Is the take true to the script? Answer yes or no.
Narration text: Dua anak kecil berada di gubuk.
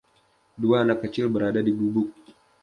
yes